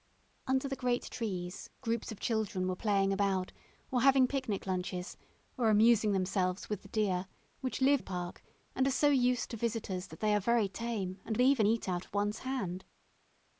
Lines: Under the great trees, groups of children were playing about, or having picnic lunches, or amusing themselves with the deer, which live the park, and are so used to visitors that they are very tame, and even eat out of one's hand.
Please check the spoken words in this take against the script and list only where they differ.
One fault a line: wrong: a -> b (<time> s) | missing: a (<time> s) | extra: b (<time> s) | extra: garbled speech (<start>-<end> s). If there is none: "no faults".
no faults